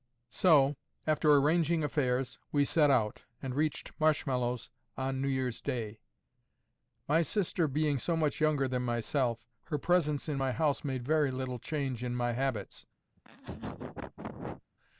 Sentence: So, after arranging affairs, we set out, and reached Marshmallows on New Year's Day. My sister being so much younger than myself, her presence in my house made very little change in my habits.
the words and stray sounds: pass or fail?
fail